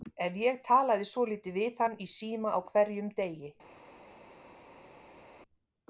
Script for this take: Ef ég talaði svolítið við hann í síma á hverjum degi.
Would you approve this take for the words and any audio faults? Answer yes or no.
yes